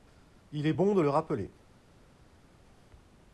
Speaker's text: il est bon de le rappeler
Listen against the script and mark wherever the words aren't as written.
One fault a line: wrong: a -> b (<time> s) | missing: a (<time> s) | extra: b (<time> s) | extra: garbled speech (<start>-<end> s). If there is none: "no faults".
no faults